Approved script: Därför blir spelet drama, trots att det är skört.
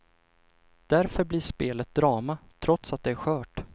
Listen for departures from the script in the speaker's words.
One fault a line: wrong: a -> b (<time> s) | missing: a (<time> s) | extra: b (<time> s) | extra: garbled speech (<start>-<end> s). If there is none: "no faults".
no faults